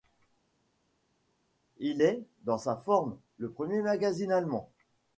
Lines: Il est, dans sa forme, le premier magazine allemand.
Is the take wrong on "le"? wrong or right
right